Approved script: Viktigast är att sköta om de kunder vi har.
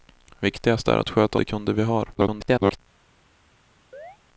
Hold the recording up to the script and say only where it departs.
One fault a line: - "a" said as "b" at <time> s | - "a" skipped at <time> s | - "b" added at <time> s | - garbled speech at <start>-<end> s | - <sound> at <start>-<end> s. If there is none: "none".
- "om" skipped at 1.4 s
- garbled speech at 2.1-2.8 s
- chirp at 3.9-4.2 s